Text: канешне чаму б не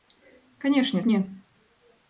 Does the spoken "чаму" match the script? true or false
false